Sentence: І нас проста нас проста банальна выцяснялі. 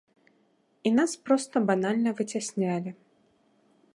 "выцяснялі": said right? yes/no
yes